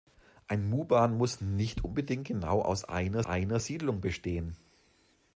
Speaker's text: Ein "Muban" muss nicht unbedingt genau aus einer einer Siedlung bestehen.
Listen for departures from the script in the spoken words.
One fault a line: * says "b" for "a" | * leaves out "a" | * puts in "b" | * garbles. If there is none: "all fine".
all fine